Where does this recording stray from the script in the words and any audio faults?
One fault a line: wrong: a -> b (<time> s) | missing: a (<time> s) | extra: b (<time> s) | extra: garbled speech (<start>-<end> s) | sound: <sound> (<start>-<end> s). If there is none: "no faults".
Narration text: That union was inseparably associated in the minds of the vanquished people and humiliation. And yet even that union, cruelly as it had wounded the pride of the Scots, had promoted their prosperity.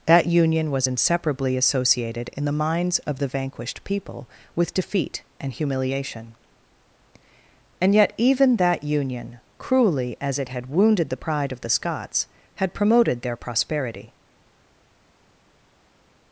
extra: with defeat (4.6 s)